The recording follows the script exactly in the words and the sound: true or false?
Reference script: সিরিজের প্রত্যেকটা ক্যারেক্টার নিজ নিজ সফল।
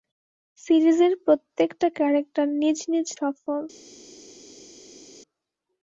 true